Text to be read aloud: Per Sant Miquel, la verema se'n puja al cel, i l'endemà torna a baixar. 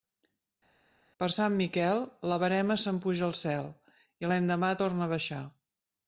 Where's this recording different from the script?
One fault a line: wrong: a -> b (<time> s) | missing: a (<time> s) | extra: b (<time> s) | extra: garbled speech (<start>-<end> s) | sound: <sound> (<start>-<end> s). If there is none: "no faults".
no faults